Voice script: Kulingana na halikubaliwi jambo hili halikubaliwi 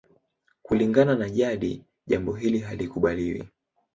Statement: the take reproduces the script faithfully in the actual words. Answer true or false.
false